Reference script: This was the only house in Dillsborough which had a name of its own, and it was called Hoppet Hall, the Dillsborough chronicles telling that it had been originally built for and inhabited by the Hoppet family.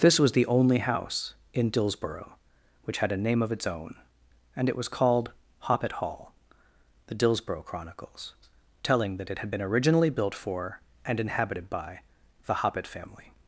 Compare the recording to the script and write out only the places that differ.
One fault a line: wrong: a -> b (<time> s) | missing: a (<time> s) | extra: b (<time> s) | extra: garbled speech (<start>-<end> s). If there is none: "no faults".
no faults